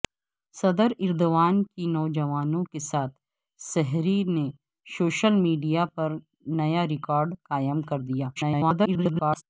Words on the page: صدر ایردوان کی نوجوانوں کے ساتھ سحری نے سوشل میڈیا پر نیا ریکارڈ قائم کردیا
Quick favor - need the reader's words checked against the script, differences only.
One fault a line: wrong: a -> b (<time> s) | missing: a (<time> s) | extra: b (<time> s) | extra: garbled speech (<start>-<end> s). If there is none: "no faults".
extra: garbled speech (8.4-9.4 s)